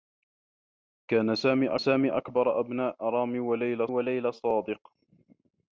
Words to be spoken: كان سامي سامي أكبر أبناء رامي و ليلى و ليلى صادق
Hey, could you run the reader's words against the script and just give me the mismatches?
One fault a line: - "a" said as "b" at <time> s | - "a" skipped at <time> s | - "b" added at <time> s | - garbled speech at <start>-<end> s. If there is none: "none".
none